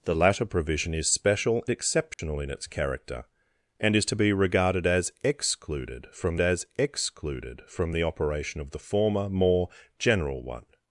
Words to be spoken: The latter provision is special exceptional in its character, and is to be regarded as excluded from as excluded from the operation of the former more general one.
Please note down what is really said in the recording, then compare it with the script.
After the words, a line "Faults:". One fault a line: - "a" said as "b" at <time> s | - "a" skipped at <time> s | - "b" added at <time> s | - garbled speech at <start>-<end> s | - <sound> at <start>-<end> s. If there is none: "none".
The latter provision is special exceptional in its character, and is to be regarded as excluded from as excluded from the operation of the former more general one.
Faults:
- dropout at 2.1-2.2 s